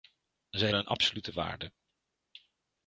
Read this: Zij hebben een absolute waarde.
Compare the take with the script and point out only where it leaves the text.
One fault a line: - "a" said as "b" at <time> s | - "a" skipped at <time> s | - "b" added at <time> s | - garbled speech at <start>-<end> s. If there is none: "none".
- "hebben" skipped at 0.7 s